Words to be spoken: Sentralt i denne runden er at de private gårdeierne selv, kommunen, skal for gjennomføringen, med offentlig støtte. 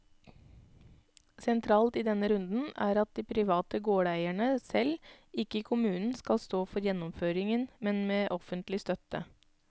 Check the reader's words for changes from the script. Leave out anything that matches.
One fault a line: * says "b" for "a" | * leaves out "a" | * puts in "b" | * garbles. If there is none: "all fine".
* puts in "ikke"
* puts in "stå"
* puts in "men"